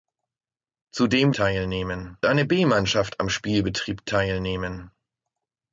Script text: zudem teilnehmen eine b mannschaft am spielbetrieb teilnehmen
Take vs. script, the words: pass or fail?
pass